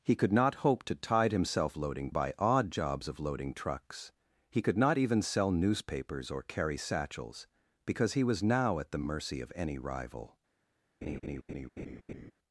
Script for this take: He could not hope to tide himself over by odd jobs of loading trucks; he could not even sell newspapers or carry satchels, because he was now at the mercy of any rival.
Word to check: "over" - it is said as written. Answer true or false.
false